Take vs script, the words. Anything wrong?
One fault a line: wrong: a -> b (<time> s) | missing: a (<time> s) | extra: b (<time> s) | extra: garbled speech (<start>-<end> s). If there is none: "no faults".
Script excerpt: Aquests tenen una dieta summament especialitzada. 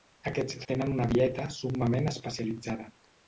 no faults